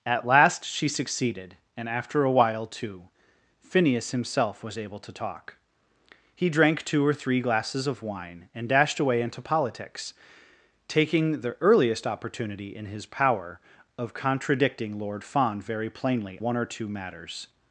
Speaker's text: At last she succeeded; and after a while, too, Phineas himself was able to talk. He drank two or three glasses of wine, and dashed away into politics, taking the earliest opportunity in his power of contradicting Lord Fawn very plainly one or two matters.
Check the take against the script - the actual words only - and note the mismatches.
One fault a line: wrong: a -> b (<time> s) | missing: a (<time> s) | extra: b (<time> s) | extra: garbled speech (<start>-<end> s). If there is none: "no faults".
no faults